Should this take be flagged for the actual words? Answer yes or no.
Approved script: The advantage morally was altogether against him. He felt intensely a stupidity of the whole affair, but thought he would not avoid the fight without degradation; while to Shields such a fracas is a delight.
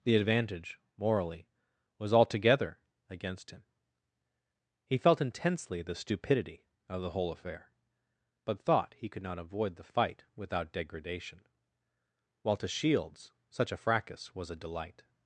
yes